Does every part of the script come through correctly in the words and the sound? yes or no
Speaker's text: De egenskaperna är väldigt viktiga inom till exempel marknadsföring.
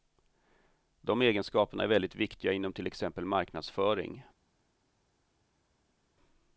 yes